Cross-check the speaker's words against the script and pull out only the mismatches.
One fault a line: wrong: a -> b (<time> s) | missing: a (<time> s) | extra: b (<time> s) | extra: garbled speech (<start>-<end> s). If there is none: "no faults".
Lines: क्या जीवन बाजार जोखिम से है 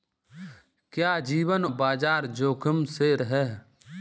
no faults